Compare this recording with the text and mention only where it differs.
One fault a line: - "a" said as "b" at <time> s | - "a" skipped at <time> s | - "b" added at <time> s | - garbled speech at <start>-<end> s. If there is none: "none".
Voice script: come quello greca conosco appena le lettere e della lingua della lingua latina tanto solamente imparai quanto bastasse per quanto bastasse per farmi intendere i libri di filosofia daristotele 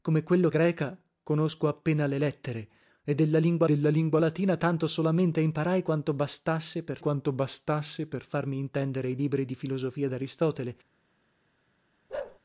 none